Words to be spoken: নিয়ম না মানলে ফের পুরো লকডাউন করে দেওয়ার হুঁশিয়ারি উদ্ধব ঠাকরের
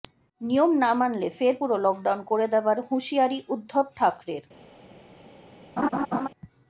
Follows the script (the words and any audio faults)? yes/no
no